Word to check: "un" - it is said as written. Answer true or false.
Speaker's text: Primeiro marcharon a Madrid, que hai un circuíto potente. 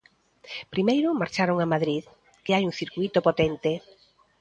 true